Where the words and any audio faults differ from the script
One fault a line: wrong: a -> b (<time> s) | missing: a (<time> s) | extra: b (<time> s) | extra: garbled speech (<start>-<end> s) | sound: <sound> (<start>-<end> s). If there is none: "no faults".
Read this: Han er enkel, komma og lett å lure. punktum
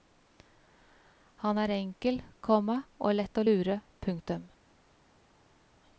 no faults